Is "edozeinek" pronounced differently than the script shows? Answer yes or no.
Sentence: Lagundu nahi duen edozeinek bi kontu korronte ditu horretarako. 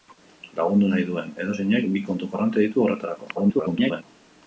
no